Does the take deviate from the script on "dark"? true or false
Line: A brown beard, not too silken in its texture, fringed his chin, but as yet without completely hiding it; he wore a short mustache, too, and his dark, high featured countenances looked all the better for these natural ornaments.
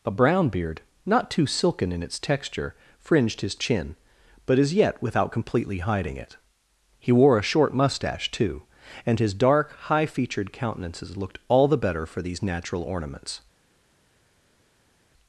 false